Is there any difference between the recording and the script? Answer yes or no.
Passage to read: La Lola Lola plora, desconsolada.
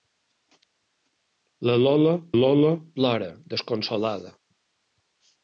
no